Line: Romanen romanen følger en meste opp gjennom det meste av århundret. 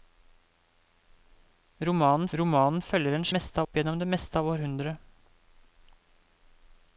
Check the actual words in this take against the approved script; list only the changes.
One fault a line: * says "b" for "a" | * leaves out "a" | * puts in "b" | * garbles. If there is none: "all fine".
all fine